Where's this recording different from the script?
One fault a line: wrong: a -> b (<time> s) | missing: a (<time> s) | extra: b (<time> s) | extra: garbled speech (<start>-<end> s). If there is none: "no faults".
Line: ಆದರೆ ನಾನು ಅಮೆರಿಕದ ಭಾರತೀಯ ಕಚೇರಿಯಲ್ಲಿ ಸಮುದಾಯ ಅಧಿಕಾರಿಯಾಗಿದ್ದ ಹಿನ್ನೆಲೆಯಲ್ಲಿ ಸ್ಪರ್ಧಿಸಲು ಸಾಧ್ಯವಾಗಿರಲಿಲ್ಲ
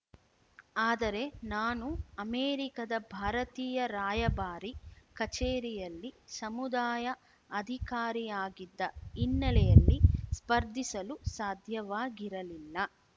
extra: ರಾಯಭಾರಿ (3.9 s)